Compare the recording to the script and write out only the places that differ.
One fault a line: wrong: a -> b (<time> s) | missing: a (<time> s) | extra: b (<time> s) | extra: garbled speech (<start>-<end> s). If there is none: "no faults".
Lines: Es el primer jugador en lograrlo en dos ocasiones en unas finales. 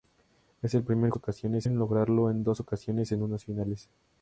wrong: jugador -> ocasiones (1.1 s)